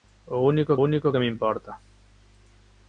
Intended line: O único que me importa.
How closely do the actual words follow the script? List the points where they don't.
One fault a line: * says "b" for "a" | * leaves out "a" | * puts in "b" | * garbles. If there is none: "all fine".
* puts in "único"